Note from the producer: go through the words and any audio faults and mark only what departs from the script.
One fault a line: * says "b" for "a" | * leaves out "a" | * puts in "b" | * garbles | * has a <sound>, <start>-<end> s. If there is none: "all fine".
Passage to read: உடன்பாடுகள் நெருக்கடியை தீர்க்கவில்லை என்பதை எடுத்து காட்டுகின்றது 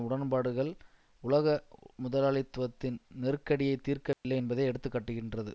* puts in "உலக முதலாளித்துவத்தின்"
* has a dropout, 4.1-4.2 s